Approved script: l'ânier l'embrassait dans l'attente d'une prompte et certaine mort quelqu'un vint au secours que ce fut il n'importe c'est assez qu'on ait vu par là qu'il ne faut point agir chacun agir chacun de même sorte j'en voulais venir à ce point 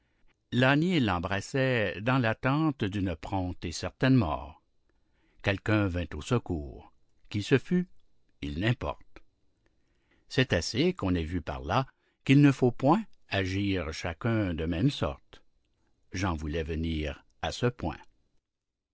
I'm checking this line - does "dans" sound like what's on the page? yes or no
yes